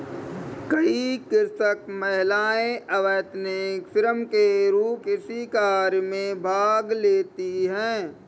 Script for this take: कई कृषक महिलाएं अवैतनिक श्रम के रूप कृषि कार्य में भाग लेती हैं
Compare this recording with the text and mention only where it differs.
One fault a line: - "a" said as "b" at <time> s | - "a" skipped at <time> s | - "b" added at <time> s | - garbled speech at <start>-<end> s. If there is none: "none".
none